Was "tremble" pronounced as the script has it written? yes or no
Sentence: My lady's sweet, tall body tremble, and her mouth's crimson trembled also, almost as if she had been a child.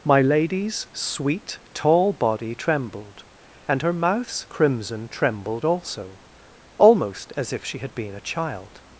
no